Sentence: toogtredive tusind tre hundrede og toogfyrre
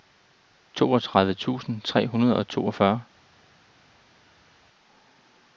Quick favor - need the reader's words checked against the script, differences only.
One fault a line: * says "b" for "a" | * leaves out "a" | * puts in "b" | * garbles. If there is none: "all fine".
all fine